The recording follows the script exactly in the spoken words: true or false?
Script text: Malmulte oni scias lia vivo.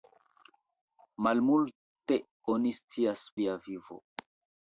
true